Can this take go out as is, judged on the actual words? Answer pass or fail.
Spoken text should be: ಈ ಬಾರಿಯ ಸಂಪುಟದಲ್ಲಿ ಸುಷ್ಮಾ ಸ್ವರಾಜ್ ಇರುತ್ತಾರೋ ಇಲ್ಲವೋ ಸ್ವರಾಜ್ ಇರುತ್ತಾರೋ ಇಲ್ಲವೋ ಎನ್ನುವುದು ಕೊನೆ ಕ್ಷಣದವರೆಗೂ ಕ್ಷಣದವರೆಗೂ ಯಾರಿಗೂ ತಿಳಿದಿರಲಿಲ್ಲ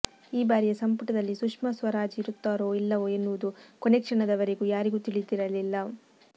fail